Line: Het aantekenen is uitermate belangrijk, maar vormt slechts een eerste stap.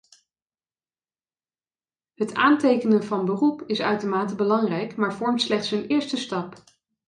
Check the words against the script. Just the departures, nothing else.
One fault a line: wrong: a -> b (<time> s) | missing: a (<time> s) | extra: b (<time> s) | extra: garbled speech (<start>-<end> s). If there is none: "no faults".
extra: van beroep (3.0 s)